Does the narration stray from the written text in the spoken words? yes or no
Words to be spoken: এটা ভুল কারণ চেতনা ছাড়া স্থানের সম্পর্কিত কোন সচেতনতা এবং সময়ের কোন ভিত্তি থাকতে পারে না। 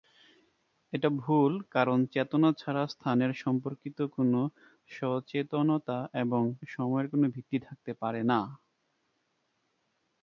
no